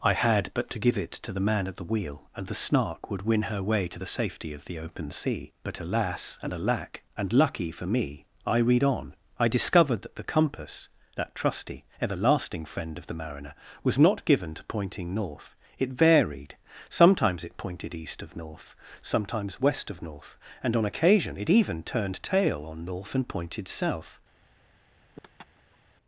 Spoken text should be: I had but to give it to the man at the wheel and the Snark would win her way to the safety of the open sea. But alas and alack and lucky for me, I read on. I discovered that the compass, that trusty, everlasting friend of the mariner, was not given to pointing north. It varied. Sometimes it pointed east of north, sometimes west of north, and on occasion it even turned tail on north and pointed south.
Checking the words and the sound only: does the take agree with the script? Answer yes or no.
no